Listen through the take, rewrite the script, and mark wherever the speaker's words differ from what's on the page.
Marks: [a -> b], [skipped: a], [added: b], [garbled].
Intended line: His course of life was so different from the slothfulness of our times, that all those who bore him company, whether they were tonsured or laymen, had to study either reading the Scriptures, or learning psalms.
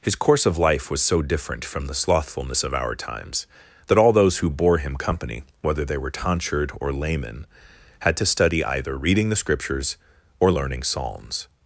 His course of life was so different from the slothfulness of our times, that all those who bore him company, whether they were tonsured or laymen, had to study either reading the Scriptures, or learning psalms.